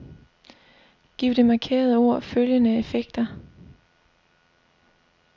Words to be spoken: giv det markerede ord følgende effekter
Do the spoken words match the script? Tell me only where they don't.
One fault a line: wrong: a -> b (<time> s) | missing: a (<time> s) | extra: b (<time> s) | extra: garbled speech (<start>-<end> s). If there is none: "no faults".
no faults